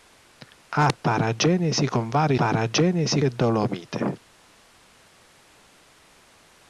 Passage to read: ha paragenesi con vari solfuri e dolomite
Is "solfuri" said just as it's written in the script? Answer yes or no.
no